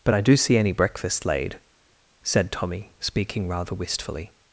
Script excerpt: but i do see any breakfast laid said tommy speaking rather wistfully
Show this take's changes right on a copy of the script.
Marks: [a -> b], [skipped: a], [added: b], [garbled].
but i do see any breakfast laid said tommy speaking rather wistfully